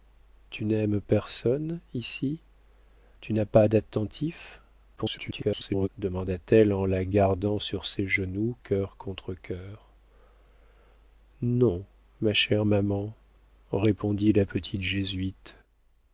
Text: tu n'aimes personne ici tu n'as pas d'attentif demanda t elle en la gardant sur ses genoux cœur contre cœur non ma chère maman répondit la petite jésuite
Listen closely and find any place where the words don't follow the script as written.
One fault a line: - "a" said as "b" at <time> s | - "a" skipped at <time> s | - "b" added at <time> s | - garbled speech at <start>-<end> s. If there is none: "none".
- garbled speech at 5.0-5.9 s